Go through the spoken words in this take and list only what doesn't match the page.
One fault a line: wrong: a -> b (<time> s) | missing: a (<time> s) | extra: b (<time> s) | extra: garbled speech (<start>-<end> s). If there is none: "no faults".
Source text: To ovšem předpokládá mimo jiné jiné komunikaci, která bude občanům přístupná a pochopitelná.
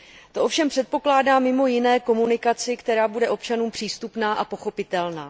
missing: jiné (2.0 s)